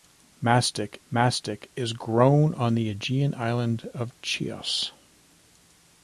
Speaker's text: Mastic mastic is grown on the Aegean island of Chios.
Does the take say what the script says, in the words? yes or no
yes